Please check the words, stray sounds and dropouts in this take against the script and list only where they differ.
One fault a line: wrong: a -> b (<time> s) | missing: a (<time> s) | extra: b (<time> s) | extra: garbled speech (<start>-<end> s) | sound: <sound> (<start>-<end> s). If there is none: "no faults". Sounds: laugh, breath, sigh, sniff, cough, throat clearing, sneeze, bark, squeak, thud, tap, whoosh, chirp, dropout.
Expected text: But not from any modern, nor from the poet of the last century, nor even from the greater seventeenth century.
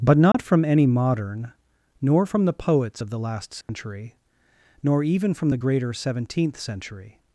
sound: dropout (0.3-0.3 s)
wrong: poet -> poets (2.5 s)
sound: dropout (3.6-3.7 s)